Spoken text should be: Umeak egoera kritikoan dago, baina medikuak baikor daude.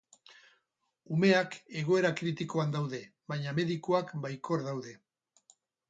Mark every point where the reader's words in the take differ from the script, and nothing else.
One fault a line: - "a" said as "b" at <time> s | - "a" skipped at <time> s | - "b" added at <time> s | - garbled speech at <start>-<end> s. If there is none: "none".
- "dago" said as "daude" at 2.8 s